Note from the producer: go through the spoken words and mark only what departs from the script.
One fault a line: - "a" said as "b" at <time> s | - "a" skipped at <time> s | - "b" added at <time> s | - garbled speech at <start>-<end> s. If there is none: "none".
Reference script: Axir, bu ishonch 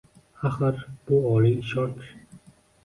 - "oliy" added at 1.4 s